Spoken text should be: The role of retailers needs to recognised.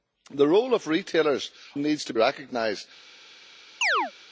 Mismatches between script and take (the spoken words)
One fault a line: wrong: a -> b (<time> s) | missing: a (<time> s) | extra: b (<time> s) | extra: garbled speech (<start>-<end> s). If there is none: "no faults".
no faults